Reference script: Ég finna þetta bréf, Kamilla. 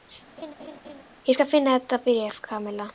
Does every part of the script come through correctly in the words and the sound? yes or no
no